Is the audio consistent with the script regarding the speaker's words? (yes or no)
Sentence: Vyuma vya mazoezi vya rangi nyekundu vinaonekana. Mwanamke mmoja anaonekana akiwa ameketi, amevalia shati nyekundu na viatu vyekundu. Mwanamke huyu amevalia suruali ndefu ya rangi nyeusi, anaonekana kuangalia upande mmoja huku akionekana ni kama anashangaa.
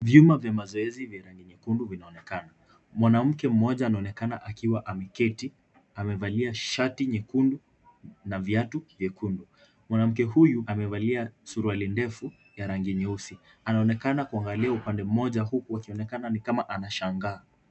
yes